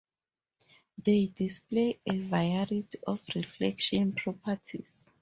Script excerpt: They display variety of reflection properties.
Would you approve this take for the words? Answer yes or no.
no